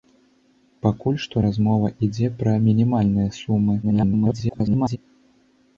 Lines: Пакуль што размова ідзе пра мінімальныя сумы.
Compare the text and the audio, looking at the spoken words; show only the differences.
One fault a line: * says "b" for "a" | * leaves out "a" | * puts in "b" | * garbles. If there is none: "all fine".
* garbles